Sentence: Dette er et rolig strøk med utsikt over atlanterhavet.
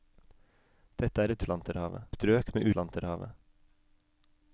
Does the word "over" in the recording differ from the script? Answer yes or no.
yes